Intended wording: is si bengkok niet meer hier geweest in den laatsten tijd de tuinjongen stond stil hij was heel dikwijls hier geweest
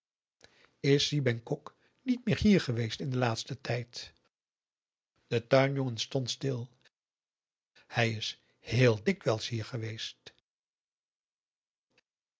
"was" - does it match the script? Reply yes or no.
no